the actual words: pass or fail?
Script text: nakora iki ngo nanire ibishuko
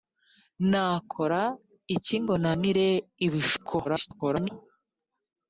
fail